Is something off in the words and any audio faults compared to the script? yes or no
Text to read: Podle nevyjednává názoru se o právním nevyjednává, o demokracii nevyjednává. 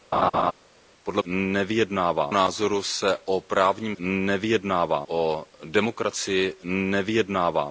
yes